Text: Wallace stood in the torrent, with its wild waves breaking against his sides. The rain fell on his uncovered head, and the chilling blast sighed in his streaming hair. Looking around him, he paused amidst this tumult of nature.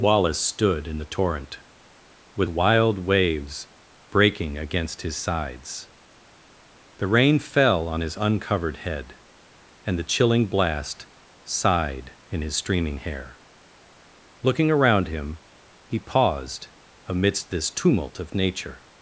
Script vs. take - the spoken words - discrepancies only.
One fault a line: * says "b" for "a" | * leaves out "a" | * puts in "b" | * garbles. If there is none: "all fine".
* leaves out "its"